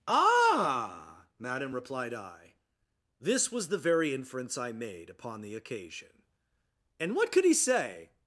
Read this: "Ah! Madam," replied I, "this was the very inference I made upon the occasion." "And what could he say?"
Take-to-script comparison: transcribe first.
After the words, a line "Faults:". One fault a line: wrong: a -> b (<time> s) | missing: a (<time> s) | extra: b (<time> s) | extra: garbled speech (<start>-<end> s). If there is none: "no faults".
"Ah! Madam," replied I, "this was the very inference I made upon the occasion." "And what could he say?"
Faults:
no faults